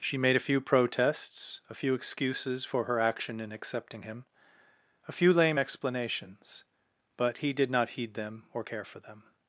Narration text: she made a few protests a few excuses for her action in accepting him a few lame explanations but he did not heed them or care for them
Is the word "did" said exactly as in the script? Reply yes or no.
yes